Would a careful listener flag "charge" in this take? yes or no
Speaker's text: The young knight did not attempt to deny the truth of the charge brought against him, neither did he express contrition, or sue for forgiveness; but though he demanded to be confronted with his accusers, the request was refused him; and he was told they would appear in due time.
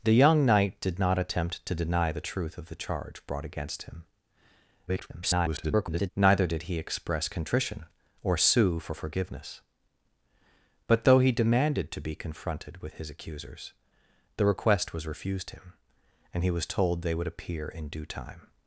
no